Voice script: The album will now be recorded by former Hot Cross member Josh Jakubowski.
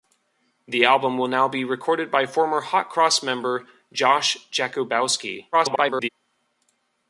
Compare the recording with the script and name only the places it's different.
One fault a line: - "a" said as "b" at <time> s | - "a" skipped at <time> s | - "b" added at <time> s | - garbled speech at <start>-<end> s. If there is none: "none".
- garbled speech at 5.5-6.1 s